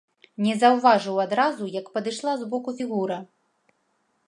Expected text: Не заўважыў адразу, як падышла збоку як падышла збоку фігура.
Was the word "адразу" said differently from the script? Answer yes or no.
no